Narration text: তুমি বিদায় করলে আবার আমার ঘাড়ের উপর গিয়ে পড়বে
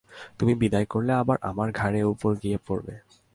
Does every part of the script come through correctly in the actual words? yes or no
yes